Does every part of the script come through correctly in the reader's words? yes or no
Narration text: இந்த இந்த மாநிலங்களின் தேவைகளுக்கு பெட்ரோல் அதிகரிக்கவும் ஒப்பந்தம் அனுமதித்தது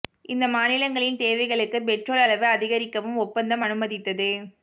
no